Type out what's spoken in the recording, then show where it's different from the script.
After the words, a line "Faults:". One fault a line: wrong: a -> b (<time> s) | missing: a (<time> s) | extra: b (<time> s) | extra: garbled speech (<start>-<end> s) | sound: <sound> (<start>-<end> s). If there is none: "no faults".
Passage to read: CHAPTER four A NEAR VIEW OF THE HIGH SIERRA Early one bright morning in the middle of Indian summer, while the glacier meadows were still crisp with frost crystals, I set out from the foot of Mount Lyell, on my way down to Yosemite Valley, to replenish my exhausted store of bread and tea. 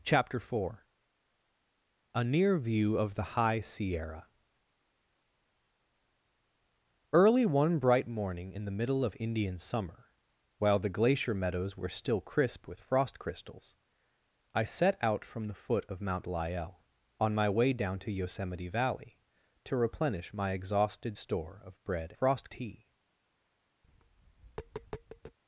CHAPTER four A NEAR VIEW OF THE HIGH SIERRA Early one bright morning in the middle of Indian summer, while the glacier meadows were still crisp with frost crystals, I set out from the foot of Mount Lyell, on my way down to Yosemite Valley, to replenish my exhausted store of bread frost tea.
Faults:
wrong: and -> frost (22.1 s)
sound: tap (23.8-25.4 s)